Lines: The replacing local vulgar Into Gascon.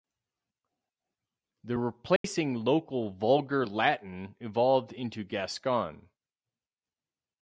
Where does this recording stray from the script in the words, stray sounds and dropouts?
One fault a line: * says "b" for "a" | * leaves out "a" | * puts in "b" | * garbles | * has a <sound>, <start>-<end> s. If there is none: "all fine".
* has a dropout, 2.2-2.2 s
* puts in "Latin evolved"